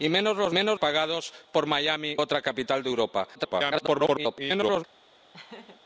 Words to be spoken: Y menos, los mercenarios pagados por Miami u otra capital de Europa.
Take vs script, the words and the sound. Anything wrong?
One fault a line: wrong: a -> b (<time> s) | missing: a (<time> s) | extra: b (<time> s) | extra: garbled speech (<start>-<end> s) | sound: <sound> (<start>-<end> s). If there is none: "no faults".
wrong: mercenarios -> menos (0.5 s)
missing: u (2.2 s)
extra: garbled speech (3.3-4.8 s)
sound: laugh (5.3-5.8 s)